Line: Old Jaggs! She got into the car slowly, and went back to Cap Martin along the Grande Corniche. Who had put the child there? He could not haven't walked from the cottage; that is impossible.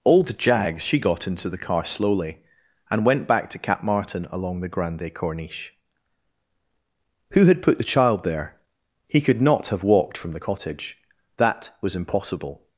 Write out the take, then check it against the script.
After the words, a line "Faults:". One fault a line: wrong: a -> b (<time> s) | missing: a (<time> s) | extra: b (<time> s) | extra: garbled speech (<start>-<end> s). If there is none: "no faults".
Old Jaggs! She got into the car slowly, and went back to Cap Martin along the Grande Corniche. Who had put the child there? He could not have walked from the cottage; that was impossible.
Faults:
wrong: haven't -> have (9.7 s)
wrong: is -> was (11.8 s)